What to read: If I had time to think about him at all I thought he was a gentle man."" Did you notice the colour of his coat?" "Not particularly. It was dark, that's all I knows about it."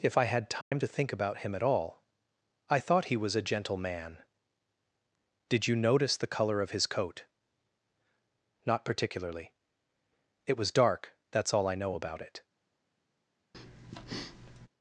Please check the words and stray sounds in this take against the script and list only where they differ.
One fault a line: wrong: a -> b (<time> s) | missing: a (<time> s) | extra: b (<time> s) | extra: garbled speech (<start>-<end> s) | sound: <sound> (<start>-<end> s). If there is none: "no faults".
sound: dropout (0.6-0.7 s)
wrong: knows -> know (11.7 s)
sound: breath (13.5-14.7 s)